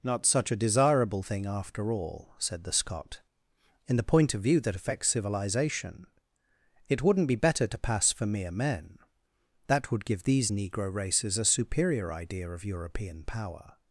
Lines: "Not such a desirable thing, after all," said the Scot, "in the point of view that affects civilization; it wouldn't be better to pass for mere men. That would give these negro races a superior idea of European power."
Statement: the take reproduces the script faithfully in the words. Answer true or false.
true